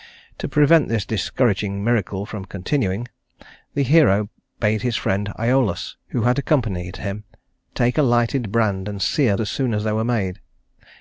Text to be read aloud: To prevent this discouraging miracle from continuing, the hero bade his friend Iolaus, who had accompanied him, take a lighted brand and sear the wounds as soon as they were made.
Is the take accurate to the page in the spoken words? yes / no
no